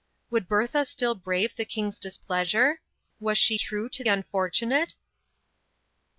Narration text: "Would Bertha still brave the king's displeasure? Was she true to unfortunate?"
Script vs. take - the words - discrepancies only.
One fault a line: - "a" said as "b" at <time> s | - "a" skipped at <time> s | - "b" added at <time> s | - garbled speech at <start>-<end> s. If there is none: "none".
none